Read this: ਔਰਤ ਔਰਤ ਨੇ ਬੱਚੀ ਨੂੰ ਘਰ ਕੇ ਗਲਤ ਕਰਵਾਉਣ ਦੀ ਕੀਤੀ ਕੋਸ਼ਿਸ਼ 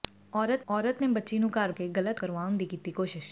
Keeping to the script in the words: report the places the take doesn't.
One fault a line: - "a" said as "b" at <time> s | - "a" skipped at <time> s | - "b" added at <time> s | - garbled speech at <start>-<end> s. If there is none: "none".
none